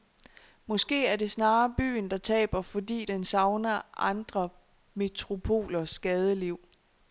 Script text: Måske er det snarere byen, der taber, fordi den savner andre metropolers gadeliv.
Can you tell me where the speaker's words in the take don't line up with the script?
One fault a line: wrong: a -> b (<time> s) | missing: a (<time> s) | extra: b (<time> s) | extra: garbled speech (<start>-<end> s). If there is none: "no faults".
no faults